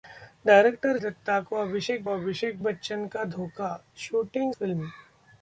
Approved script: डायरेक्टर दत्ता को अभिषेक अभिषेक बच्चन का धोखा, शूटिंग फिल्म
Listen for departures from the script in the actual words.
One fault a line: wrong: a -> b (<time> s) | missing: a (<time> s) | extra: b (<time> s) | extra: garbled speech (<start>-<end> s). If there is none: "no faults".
no faults